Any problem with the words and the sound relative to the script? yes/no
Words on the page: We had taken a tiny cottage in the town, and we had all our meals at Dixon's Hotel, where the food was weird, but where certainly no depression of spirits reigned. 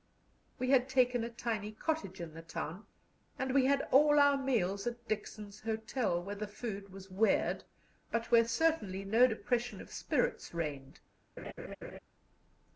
yes